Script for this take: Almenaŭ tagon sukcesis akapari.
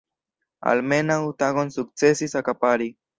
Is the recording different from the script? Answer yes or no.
no